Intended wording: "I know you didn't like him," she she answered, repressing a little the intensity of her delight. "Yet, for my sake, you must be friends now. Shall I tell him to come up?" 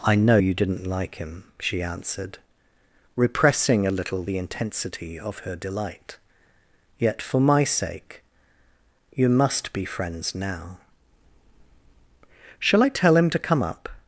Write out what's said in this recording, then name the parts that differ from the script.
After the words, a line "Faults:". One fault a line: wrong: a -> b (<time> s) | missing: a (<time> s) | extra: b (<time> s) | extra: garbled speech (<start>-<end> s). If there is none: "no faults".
"I know you didn't like him," she answered, repressing a little the intensity of her delight. "Yet, for my sake, you must be friends now. Shall I tell him to come up?"
Faults:
missing: she (1.8 s)